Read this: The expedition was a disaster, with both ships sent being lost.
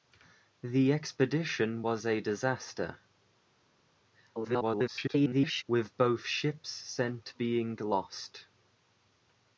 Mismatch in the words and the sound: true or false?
true